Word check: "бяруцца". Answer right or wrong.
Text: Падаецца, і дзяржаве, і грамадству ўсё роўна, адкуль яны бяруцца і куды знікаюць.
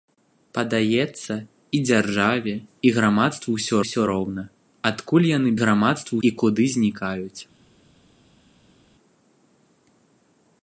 wrong